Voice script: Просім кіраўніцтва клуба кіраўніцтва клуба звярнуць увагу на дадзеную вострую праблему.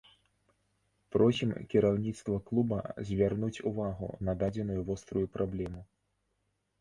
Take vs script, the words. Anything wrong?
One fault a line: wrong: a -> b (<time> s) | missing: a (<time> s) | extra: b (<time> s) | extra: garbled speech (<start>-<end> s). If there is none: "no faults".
missing: кіраўніцтва клуба (2.8 s)